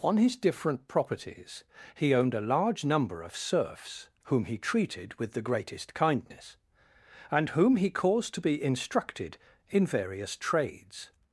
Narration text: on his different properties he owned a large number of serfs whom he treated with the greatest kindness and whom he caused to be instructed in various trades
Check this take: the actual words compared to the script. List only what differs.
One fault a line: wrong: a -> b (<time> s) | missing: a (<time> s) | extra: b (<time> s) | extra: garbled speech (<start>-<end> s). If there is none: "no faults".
no faults